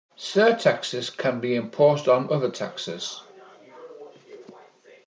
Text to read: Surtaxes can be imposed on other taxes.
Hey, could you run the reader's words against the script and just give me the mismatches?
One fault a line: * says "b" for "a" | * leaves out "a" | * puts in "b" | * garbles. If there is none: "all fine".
all fine